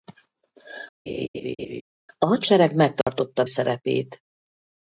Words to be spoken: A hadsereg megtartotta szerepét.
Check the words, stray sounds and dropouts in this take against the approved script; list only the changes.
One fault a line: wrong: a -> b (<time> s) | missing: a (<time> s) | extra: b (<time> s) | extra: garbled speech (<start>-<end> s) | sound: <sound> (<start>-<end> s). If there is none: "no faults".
sound: laugh (1.1-1.8 s)
sound: dropout (3.0-3.1 s)